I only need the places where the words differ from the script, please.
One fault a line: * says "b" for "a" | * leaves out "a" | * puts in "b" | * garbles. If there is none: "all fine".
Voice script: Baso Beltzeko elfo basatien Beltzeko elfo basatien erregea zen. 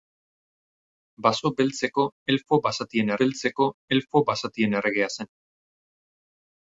all fine